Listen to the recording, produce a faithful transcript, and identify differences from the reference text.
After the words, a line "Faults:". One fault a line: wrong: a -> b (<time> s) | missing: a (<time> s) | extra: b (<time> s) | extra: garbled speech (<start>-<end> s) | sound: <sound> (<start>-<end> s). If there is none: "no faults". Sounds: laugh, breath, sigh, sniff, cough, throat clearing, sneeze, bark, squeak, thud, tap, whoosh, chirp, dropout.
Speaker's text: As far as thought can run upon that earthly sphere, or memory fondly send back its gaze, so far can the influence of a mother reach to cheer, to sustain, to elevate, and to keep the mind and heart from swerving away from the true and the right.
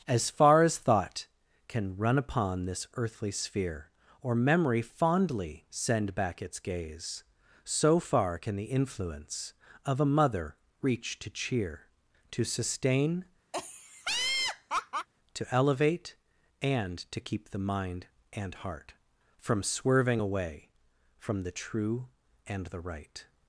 As far as thought can run upon this earthly sphere, or memory fondly send back its gaze, so far can the influence of a mother reach to cheer, to sustain, to elevate, and to keep the mind and heart from swerving away from the true and the right.
Faults:
wrong: that -> this (2.6 s)
sound: laugh (13.5-15.1 s)